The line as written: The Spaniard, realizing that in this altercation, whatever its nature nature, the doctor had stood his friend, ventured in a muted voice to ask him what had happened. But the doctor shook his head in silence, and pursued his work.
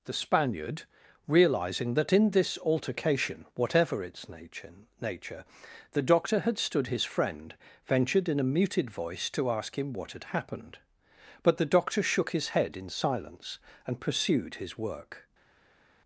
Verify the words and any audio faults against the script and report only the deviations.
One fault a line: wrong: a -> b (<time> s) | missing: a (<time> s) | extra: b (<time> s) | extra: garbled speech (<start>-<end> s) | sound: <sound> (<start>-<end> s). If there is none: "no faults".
no faults